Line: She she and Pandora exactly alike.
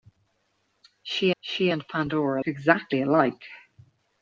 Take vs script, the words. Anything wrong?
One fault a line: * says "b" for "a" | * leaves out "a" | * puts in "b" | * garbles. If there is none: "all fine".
all fine